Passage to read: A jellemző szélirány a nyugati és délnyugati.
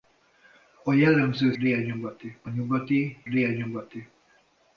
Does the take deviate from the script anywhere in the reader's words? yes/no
yes